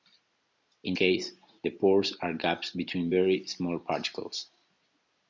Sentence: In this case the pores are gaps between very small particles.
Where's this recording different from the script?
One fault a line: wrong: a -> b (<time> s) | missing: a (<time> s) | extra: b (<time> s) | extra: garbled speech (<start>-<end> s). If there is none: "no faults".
missing: this (0.9 s)